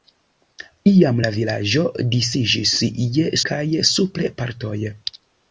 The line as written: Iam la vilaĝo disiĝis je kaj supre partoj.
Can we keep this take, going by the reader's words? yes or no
yes